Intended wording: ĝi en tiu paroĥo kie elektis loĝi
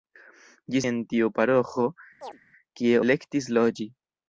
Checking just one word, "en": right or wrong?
right